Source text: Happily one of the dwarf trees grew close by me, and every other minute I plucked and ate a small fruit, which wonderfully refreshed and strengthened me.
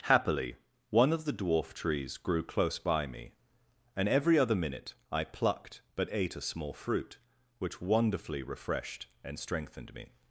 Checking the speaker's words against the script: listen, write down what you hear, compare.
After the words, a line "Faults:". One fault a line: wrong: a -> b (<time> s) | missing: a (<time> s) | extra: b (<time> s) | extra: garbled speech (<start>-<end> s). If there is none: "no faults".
Happily one of the dwarf trees grew close by me, and every other minute I plucked but ate a small fruit, which wonderfully refreshed and strengthened me.
Faults:
wrong: and -> but (6.0 s)